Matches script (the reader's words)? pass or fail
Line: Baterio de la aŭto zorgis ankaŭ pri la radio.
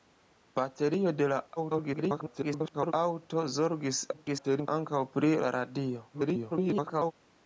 fail